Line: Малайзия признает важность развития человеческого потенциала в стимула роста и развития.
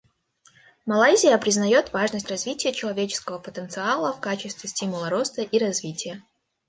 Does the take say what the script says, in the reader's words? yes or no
no